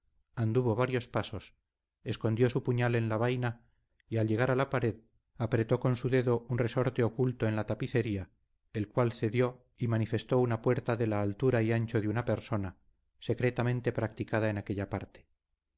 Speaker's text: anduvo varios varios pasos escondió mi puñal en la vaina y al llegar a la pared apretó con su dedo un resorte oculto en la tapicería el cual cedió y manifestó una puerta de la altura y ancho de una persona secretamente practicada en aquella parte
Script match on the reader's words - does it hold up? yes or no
no